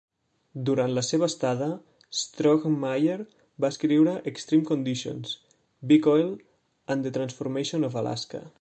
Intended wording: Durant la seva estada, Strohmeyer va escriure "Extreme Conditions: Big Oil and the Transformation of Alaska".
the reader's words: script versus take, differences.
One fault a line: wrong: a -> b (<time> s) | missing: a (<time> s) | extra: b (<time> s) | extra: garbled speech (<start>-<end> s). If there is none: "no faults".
no faults